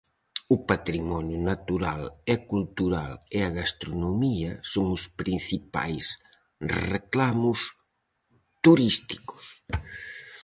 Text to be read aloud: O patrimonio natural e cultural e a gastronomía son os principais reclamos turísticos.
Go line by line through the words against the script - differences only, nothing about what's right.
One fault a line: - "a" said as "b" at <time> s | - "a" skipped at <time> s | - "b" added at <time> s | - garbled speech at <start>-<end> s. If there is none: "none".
none